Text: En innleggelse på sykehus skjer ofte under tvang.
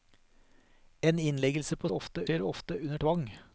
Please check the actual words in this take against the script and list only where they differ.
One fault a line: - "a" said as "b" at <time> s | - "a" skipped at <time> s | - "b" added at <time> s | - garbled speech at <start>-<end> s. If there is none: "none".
- "sykehus" said as "ofte" at 1.9 s